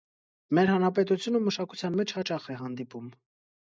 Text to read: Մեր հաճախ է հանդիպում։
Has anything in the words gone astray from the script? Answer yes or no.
yes